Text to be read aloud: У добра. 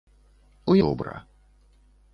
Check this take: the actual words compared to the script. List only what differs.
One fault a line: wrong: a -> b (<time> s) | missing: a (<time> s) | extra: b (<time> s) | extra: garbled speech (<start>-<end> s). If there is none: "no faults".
no faults